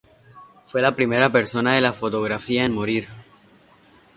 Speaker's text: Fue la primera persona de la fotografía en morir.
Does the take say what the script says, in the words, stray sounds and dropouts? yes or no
yes